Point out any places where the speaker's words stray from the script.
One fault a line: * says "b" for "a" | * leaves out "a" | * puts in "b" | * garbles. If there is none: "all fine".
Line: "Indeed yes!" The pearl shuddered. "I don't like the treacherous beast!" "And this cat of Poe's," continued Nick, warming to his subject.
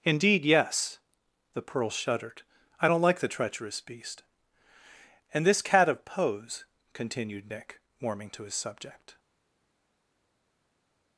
all fine